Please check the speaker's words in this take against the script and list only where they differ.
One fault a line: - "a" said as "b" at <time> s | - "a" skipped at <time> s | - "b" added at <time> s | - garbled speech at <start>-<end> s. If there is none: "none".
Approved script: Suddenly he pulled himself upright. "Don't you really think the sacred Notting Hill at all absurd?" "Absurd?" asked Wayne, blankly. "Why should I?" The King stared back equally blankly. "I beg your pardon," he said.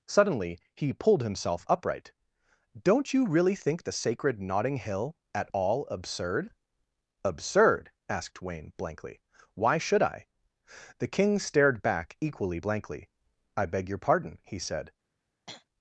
none